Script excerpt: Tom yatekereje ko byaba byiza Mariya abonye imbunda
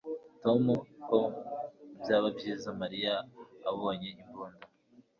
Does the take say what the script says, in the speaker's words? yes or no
no